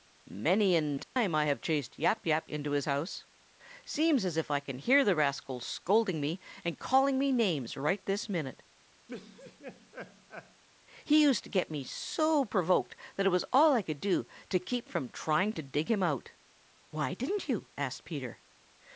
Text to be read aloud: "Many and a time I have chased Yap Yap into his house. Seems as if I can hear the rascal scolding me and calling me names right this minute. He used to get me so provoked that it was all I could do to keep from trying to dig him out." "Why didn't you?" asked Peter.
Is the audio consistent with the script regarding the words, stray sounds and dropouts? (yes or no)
no